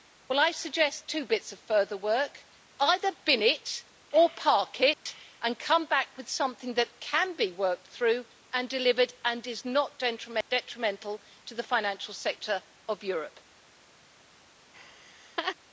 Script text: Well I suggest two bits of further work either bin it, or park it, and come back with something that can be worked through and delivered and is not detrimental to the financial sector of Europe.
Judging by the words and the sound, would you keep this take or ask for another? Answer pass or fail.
fail